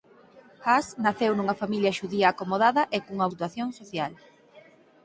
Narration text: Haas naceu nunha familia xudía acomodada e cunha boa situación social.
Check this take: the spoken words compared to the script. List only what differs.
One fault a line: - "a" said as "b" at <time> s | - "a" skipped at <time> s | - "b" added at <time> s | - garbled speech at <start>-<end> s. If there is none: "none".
- "boa" skipped at 3.3 s